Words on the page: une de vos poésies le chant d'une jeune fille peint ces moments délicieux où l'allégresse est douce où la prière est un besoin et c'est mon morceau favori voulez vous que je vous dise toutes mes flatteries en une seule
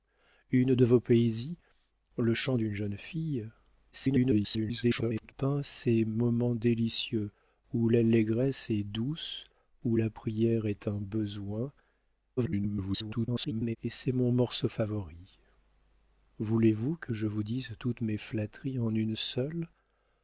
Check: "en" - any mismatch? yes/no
no